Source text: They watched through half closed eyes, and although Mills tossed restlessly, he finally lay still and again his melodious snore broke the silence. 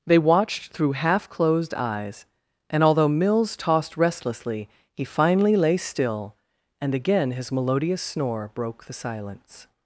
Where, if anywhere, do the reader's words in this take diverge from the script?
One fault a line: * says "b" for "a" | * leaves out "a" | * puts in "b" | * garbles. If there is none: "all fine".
all fine